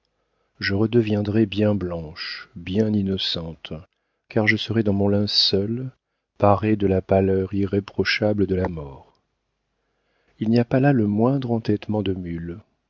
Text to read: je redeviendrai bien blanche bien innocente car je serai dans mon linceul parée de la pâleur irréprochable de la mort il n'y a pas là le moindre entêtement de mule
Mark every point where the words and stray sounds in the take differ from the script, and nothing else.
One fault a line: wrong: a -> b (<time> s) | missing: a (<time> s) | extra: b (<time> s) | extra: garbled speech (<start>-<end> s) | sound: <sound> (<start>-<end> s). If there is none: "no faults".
no faults